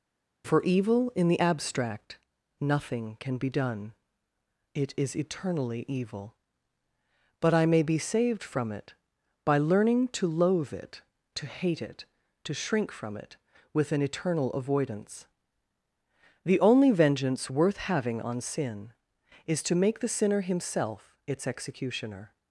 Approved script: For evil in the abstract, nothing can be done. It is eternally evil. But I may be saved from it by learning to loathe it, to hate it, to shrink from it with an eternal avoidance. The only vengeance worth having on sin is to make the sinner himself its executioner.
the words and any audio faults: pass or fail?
pass